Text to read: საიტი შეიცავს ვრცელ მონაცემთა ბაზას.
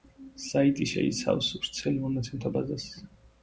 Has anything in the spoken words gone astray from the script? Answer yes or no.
no